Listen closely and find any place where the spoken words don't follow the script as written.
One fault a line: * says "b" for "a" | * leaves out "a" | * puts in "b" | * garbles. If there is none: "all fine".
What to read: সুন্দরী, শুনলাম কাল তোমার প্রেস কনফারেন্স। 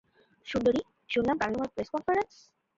all fine